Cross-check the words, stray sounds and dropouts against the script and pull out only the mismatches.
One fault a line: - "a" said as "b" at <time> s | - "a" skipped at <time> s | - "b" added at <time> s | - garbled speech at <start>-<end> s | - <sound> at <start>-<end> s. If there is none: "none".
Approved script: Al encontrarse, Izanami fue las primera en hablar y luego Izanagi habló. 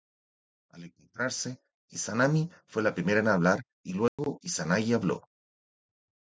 - "las" said as "la" at 2.8 s
- dropout at 4.1-4.2 s